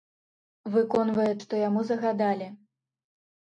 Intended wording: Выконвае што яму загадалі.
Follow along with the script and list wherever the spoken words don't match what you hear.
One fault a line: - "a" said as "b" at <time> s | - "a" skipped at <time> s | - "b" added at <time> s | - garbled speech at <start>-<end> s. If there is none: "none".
none